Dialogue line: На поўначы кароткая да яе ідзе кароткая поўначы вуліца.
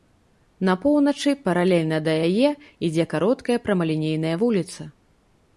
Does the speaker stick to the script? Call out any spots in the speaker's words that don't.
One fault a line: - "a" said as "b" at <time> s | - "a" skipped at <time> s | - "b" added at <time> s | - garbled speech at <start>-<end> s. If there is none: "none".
- "кароткая" said as "паралельна" at 1.5 s
- "поўначы" said as "прамалінейная" at 3.7 s